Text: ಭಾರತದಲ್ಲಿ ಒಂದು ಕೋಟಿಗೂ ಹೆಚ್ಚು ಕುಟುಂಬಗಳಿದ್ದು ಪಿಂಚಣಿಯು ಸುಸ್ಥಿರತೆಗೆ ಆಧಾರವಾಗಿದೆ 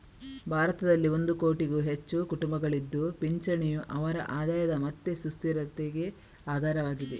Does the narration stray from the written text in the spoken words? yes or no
yes